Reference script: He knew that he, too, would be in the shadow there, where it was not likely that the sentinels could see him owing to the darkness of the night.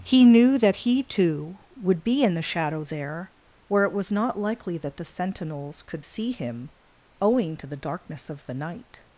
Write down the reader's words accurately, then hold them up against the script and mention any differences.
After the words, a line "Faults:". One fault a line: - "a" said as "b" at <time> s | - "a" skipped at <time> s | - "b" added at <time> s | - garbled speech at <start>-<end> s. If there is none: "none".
He knew that he, too, would be in the shadow there, where it was not likely that the sentinels could see him owing to the darkness of the night.
Faults:
none